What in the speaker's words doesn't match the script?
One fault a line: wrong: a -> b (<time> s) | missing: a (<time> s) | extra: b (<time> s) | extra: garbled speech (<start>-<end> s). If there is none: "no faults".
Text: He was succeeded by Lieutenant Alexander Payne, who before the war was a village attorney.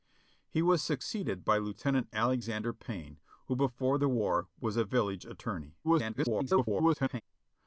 extra: garbled speech (5.8-7.2 s)